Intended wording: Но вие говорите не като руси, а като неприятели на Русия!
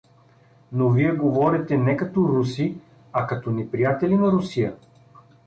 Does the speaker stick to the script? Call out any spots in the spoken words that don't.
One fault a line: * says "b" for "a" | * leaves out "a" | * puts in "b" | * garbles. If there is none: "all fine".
all fine